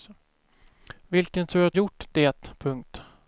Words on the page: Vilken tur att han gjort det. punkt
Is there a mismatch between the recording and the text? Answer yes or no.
yes